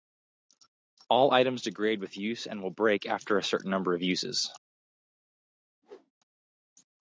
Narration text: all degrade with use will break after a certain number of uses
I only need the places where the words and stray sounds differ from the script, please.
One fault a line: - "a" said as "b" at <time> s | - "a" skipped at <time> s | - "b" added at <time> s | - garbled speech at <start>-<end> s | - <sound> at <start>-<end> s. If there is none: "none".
- "items" added at 1.3 s
- "and" added at 2.5 s
- whoosh at 5.8-6.1 s